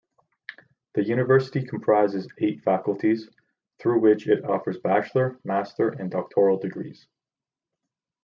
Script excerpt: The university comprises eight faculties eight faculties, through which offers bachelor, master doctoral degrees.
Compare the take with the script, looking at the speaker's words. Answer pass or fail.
fail